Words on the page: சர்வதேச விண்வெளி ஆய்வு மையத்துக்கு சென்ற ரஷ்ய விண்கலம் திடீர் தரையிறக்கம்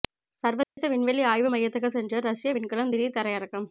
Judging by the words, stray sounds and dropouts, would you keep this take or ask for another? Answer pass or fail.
fail